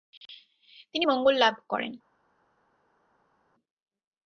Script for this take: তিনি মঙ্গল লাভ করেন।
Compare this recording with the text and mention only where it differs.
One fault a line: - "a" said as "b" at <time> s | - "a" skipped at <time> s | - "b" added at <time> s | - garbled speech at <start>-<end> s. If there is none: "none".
none